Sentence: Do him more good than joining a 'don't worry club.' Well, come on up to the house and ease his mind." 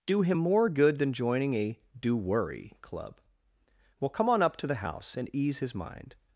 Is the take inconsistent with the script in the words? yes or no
yes